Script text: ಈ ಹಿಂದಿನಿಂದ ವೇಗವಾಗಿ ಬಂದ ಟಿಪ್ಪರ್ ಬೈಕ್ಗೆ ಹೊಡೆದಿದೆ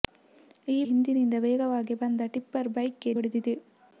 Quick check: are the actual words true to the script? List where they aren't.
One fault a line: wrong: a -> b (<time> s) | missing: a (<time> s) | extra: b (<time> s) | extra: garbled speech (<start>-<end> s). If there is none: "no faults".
no faults